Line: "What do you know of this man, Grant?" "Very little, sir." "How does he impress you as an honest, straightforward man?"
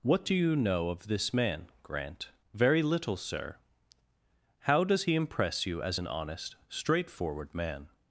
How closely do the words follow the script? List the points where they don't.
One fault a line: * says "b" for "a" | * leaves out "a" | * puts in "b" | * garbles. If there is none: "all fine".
all fine